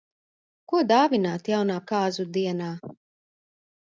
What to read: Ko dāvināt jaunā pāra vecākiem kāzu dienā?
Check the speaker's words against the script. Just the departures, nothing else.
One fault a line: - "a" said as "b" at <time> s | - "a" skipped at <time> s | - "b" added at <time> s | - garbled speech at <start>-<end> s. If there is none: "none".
- "pāra vecākiem" skipped at 1.8 s